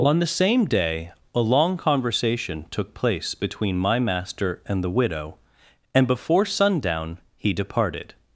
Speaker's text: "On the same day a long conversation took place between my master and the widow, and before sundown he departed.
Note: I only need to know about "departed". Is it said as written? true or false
true